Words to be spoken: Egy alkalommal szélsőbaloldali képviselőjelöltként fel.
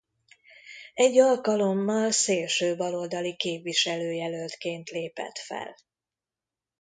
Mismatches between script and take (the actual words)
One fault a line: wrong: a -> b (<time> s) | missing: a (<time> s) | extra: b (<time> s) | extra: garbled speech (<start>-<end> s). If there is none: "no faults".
extra: lépett (4.9 s)